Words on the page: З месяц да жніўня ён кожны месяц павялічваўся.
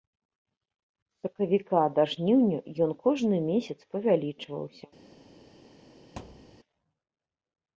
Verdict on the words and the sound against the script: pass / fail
fail